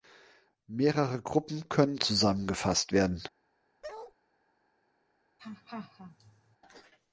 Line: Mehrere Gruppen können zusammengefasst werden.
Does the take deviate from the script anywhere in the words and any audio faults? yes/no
yes